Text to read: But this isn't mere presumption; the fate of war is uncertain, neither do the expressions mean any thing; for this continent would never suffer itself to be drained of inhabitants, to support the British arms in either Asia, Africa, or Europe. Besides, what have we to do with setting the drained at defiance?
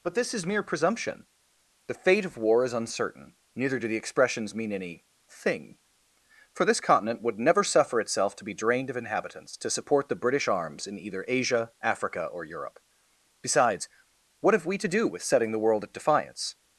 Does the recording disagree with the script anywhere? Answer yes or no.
yes